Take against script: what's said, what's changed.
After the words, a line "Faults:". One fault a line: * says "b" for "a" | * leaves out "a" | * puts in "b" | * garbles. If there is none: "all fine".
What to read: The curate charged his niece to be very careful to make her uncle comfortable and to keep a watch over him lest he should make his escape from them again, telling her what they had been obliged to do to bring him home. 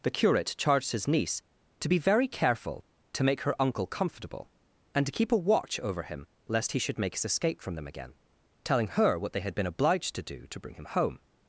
The curate charged his niece to be very careful to make her uncle comfortable and to keep a watch over him lest he should make his escape from them again, telling her what they had been obliged to do to bring him home.
Faults:
all fine